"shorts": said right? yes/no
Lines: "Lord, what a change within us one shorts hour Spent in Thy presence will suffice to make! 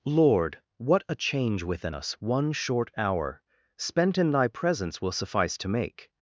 no